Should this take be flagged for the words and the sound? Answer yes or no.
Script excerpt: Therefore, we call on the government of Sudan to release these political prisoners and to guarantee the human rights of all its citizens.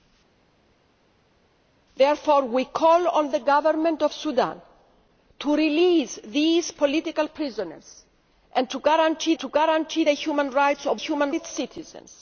yes